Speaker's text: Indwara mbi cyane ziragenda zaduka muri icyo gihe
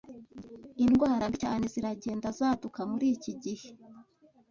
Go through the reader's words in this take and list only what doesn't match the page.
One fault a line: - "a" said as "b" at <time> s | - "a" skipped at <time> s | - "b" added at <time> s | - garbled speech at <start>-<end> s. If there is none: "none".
- "icyo" said as "iki" at 3.1 s